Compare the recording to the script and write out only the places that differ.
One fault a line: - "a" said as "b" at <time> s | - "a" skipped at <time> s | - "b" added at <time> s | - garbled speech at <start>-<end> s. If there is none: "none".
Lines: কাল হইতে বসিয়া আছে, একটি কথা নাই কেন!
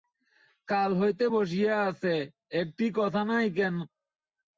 none